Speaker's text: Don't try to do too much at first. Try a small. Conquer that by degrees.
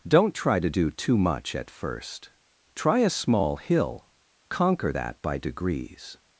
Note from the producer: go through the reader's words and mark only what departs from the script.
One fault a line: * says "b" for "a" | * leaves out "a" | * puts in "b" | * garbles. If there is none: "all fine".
* puts in "hill"